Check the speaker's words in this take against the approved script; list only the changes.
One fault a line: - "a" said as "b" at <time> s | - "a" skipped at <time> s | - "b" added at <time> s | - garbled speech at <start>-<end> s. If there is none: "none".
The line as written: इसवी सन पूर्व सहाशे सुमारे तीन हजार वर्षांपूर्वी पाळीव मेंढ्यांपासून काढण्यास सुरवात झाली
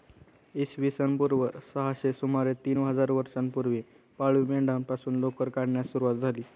- "लोकर" added at 5.2 s